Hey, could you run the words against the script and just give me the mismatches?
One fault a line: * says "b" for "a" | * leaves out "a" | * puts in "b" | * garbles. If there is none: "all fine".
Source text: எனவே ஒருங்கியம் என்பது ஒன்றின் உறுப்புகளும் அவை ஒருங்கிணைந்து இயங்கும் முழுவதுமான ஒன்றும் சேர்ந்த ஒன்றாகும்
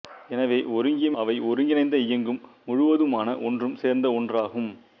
* leaves out "என்பது ஒன்றின் உறுப்புகளும்"